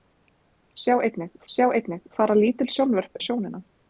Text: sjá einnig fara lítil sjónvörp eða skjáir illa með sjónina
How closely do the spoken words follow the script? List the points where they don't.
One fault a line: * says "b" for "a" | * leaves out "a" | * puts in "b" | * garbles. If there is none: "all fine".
* puts in "sjá einnig"
* leaves out "eða skjáir illa"